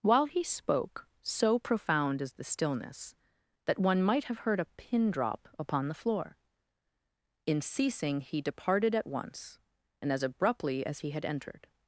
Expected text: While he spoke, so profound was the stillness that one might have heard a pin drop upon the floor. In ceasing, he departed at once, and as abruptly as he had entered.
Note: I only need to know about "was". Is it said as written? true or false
false